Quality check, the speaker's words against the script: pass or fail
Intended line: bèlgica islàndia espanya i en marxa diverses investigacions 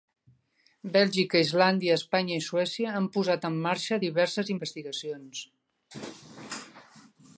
fail